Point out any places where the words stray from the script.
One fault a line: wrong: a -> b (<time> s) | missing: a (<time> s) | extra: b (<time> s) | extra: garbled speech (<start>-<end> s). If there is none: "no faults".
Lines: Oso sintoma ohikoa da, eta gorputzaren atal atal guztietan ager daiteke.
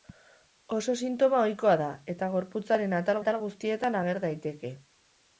no faults